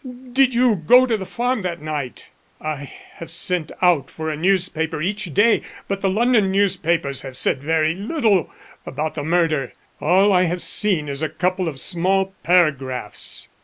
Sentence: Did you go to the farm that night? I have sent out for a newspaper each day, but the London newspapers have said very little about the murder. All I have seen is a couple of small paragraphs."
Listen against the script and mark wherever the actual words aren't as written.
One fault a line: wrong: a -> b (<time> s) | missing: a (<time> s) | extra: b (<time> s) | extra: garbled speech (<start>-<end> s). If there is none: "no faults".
no faults